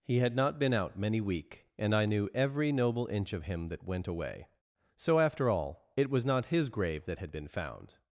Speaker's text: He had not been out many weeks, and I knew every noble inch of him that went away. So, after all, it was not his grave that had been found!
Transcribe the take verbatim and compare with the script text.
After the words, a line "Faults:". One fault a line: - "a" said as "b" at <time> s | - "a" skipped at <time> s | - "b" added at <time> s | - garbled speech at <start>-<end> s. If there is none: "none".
He had not been out many week, and I knew every noble inch of him that went away. So, after all, it was not his grave that had been found!
Faults:
- "weeks" said as "week" at 1.2 s